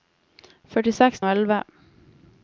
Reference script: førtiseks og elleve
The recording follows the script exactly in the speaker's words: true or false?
true